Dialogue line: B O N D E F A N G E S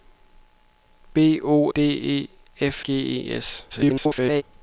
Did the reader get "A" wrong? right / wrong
wrong